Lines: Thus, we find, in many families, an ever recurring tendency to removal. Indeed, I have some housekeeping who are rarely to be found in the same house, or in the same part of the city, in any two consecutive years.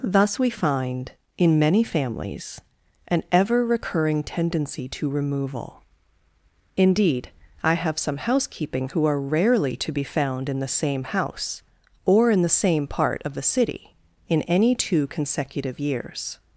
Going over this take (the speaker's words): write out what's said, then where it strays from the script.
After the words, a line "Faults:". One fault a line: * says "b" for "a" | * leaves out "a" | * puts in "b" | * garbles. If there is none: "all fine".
Thus, we find, in many families, an ever recurring tendency to removal. Indeed, I have some housekeeping who are rarely to be found in the same house, or in the same part of the city, in any two consecutive years.
Faults:
all fine